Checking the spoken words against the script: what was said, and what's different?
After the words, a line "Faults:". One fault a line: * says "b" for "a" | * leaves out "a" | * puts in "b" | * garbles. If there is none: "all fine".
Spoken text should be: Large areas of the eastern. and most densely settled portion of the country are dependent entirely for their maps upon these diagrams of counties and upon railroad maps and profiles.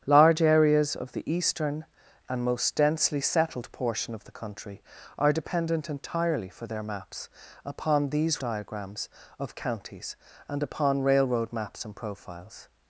Large areas of the eastern. and most densely settled portion of the country are dependent entirely for their maps upon these diagrams of counties and upon railroad maps and profiles.
Faults:
all fine